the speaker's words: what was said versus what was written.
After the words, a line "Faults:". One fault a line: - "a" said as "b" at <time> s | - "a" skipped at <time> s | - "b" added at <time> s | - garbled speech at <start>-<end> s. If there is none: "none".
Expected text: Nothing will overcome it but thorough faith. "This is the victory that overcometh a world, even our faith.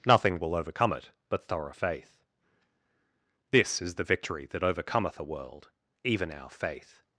Nothing will overcome it but thorough faith. "This is the victory that overcometh a world, even our faith.
Faults:
none